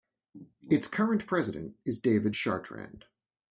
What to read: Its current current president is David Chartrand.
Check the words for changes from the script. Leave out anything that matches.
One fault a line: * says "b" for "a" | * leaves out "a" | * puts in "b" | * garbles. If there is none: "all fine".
* leaves out "current"